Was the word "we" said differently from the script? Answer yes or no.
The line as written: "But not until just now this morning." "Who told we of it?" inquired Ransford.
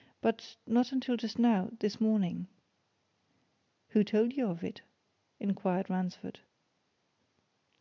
yes